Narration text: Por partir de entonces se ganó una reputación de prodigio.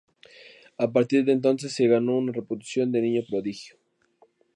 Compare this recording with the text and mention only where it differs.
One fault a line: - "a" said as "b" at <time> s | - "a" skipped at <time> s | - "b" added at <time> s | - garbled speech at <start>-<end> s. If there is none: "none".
- "Por" said as "A" at 0.8 s
- "niño" added at 3.0 s